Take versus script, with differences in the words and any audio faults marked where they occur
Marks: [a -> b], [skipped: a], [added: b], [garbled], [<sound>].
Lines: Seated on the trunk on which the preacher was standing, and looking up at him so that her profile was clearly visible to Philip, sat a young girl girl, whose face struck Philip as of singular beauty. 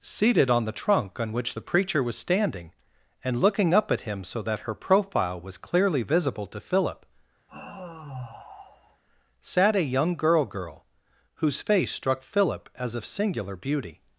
Seated on the trunk on which the preacher was standing, and looking up at him so that her profile was clearly visible to Philip, [sigh] sat a young girl girl, whose face struck Philip as of singular beauty.